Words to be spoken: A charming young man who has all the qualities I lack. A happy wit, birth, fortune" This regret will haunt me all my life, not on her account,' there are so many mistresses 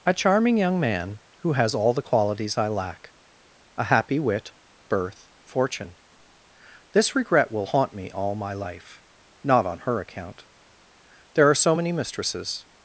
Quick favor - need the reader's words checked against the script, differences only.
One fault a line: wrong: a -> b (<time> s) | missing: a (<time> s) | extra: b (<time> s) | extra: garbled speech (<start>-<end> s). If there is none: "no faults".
no faults